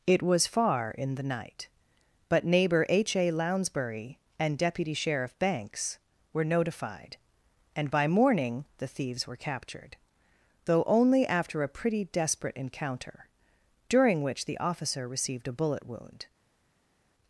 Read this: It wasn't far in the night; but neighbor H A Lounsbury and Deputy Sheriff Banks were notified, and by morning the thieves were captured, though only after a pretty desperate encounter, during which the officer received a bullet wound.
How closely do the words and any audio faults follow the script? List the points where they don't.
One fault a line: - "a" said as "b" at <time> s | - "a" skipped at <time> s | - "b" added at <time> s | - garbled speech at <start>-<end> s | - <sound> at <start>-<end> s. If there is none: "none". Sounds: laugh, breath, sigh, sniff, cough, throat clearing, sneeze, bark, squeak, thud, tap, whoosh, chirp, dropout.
- "wasn't" said as "was" at 0.2 s